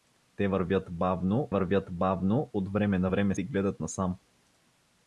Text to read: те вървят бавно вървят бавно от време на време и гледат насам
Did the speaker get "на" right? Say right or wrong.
right